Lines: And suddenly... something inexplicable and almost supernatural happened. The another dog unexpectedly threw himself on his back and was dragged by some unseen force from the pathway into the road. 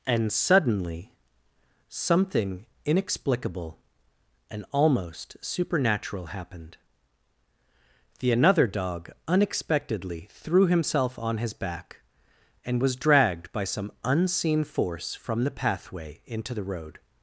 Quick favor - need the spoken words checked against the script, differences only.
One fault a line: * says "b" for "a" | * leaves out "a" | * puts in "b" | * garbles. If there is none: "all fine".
all fine